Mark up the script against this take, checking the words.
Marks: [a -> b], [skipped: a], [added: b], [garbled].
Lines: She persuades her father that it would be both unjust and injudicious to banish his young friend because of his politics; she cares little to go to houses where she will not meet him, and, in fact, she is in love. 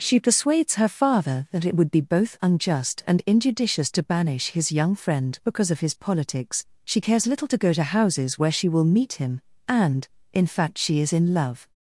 She persuades her father that it would be both unjust and injudicious to banish his young friend because of his politics; she cares little to go to houses where she will [skipped: not] meet him, and, in fact, she is in love.